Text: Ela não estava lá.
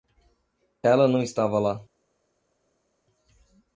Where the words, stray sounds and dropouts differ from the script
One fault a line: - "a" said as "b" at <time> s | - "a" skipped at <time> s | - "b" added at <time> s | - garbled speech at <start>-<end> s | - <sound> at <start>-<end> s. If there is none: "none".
none